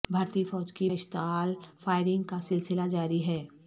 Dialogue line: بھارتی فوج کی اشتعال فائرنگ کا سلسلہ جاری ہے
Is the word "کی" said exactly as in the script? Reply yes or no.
yes